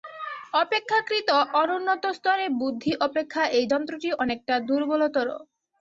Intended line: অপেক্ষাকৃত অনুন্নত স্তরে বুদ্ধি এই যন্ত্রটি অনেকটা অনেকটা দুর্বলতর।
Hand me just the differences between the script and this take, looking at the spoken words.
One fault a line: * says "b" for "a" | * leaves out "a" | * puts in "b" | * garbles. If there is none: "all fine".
* puts in "অপেক্ষা"
* leaves out "অনেকটা"